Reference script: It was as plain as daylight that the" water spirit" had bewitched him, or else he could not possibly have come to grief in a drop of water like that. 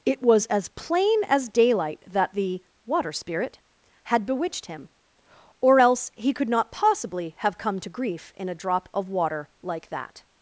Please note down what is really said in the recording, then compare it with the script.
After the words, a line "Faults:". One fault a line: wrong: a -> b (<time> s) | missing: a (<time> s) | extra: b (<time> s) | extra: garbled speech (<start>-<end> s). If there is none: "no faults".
It was as plain as daylight that the" water spirit" had bewitched him, or else he could not possibly have come to grief in a drop of water like that.
Faults:
no faults